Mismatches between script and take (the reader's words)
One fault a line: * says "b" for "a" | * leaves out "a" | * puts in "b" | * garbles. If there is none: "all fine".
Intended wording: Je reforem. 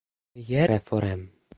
all fine